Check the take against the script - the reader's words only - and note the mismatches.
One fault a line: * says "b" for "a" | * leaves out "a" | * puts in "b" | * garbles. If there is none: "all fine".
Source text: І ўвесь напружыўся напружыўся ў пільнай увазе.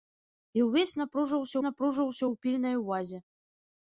all fine